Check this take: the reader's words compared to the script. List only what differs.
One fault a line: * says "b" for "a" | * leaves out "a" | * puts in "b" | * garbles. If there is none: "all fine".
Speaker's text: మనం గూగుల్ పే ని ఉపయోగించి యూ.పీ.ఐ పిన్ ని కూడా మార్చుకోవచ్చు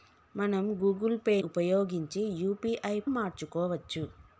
* leaves out "ని"
* leaves out "పిన్ ని కూడా"